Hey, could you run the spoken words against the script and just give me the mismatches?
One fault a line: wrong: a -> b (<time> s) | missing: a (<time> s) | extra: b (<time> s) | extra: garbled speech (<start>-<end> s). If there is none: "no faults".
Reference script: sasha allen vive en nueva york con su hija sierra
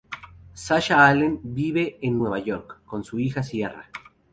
no faults